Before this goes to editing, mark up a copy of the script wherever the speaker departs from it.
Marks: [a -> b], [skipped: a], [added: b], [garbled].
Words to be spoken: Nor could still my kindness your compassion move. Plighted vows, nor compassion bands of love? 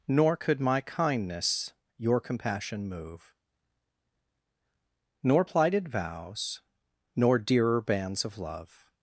Nor could [skipped: still] my kindness your compassion move. [added: Nor] Plighted vows, nor [compassion -> dearer] bands of love?